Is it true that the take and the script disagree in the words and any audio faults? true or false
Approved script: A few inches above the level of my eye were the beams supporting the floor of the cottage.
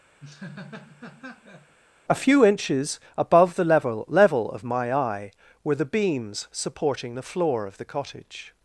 true